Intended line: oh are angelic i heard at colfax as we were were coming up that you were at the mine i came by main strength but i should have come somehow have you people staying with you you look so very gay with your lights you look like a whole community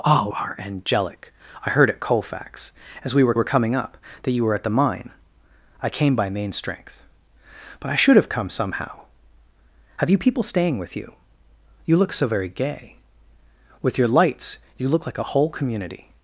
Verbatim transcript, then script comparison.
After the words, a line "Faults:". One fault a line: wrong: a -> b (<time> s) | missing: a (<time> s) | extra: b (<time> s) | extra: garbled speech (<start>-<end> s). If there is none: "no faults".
oh are angelic i heard at colfax as we were were coming up that you were at the mine i came by main strength but i should have come somehow have you people staying with you you look so very gay with your lights you look like a whole community
Faults:
no faults